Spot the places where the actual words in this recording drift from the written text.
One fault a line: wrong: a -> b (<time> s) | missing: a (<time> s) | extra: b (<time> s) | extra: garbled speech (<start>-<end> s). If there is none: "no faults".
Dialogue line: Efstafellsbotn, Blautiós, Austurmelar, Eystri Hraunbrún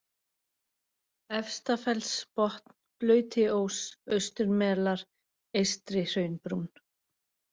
no faults